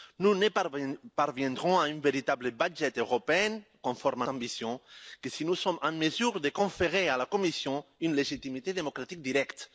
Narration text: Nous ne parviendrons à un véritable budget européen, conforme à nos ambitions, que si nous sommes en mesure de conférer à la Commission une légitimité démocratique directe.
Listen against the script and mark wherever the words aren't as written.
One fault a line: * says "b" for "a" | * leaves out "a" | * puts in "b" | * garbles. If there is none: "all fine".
* leaves out "nos"